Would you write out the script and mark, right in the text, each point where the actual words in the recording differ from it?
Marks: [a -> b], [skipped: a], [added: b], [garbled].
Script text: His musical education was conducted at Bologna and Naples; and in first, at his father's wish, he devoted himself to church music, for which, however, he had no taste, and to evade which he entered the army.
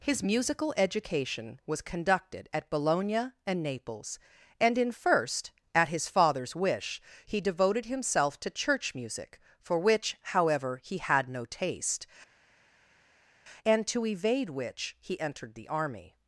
His musical education was conducted at Bologna and Naples; and in first, at his father's wish, he devoted himself to church music, for which, however, he had no taste, and to evade which he entered the army.